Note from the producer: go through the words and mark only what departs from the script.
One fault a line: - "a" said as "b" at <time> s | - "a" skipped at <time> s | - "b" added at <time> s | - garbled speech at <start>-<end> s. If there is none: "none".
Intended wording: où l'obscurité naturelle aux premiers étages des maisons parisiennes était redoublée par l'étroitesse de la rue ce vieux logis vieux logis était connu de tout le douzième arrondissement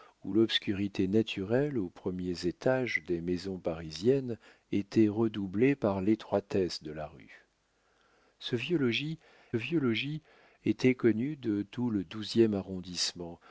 none